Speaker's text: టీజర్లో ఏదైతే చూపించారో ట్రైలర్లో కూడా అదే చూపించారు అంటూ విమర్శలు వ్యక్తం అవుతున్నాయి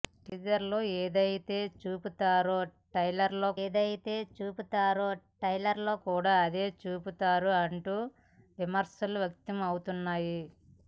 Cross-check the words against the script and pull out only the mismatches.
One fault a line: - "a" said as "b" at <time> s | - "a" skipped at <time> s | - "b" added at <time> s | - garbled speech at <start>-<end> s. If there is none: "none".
- "ఏదైతే చూపించారో ట్రైలర్లో" added at 3.6 s